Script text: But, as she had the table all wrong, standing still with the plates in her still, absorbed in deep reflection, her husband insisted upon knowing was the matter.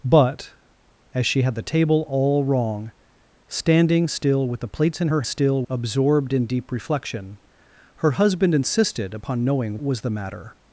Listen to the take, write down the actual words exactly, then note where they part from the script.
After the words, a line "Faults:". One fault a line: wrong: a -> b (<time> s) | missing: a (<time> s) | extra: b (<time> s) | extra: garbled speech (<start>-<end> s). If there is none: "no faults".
But, as she had the table all wrong, standing still with the plates in her still, absorbed in deep reflection, her husband insisted upon knowing was the matter.
Faults:
no faults